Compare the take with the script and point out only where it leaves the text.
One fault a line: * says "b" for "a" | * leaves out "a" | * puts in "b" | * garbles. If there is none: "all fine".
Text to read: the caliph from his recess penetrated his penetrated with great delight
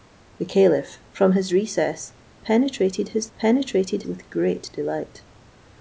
all fine